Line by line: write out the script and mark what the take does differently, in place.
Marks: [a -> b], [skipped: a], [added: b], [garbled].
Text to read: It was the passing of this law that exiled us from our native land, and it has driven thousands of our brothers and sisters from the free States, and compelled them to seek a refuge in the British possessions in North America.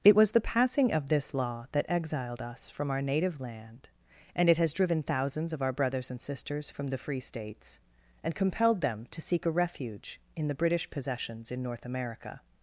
It was the passing of this law that exiled us from our native land, and it has driven thousands of our brothers and sisters from the free States, and compelled them to seek a refuge in the British possessions in North America.